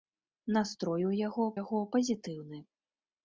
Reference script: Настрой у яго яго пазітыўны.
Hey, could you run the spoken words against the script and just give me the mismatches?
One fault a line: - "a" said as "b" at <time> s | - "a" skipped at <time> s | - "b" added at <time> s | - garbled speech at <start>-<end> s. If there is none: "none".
none